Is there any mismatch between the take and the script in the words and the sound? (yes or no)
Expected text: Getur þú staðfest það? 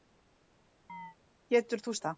yes